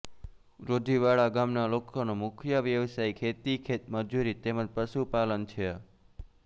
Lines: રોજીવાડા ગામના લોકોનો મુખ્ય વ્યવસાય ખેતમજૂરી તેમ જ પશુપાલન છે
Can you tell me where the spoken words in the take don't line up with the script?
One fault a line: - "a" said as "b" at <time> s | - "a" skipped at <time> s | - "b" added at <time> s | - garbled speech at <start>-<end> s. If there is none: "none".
- "ખેતી" added at 3.2 s